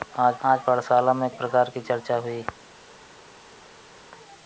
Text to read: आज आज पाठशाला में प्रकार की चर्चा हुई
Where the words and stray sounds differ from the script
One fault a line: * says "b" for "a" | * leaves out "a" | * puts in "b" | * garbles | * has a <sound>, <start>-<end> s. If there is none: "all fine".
all fine